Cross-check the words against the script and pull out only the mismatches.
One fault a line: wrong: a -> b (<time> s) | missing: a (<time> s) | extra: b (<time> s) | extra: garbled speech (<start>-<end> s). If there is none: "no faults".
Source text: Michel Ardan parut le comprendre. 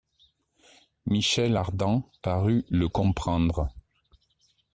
no faults